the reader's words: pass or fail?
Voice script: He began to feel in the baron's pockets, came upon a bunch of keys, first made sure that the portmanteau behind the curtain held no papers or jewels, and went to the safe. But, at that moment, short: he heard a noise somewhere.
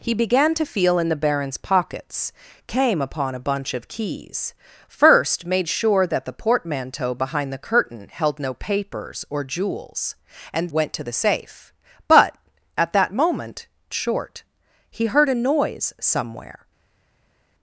pass